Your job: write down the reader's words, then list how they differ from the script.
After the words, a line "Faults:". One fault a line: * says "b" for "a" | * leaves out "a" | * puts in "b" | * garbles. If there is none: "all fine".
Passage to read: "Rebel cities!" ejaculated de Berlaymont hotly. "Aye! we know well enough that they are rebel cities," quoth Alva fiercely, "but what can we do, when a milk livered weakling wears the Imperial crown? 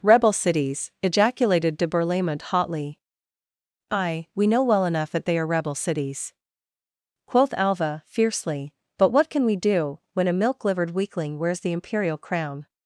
"Rebel cities!" ejaculated de Berlaymont hotly. "Aye! we know well enough that they are rebel cities," quoth Alva fiercely, "but what can we do, when a milk livered weakling wears the Imperial crown?
Faults:
all fine